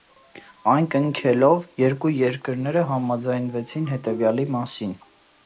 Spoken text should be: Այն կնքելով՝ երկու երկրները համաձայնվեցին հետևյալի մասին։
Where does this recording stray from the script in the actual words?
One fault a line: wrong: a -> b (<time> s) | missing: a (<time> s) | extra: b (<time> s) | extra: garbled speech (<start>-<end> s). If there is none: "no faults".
no faults